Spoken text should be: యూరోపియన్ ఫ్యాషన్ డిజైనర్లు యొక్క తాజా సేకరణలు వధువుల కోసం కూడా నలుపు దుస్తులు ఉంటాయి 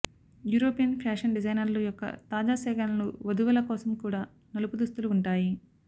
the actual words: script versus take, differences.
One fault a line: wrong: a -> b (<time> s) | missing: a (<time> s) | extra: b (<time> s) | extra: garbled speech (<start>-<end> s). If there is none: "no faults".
no faults